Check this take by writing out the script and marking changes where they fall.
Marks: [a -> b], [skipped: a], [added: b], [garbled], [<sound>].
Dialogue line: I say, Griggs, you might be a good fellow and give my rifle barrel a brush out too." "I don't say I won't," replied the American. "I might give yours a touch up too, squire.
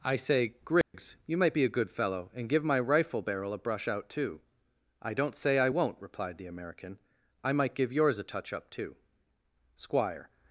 I say, Griggs, [dropout] you might be a good fellow and give my rifle barrel a brush out too." "I don't say I won't," replied the American. "I might give yours a touch up too, squire.